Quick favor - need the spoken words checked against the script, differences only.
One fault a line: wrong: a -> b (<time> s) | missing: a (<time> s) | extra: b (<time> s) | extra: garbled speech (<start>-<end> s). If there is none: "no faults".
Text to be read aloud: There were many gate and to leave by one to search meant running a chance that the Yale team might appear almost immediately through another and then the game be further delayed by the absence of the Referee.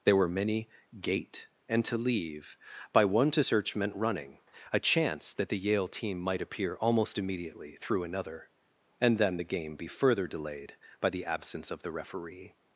no faults